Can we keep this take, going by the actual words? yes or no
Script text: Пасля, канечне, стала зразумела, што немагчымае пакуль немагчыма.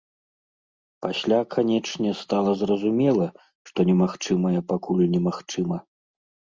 yes